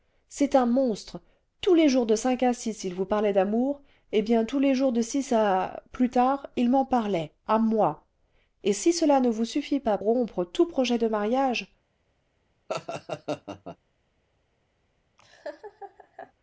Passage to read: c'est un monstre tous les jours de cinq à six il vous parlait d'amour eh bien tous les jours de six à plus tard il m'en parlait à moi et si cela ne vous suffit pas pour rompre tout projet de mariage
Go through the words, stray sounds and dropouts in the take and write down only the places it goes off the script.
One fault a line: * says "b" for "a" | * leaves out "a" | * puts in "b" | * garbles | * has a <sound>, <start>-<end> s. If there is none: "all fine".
* leaves out "pour"
* has a laugh, 12.7-13.8 s
* has a laugh, 15.2-16.3 s